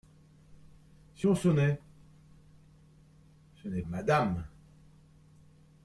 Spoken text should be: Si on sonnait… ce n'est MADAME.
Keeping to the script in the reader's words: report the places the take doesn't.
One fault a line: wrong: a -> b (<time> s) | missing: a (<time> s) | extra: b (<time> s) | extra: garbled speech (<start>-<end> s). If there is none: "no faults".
no faults